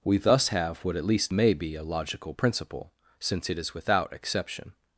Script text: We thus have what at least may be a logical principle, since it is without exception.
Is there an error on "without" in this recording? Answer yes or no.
no